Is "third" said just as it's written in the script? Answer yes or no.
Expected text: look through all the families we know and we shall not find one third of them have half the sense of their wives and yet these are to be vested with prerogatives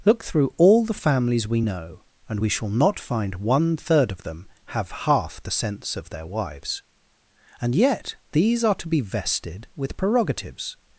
yes